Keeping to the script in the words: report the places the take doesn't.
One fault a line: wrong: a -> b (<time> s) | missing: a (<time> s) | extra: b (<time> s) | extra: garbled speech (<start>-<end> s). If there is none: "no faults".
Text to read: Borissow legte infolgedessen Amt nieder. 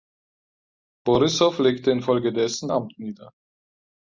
no faults